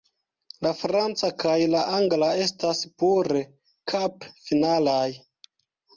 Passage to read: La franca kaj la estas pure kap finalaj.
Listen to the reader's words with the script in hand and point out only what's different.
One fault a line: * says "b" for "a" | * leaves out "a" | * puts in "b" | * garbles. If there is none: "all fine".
* puts in "angla"